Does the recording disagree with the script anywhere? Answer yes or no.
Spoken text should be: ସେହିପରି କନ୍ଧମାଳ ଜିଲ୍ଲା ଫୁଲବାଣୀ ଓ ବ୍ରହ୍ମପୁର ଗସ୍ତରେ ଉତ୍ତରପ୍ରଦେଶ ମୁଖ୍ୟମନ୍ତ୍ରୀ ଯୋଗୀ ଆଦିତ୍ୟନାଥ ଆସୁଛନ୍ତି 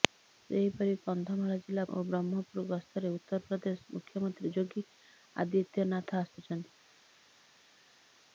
yes